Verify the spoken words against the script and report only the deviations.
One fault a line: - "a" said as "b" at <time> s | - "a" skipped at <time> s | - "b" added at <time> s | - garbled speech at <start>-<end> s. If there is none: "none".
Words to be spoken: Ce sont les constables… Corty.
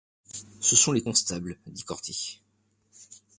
- "dit" added at 1.7 s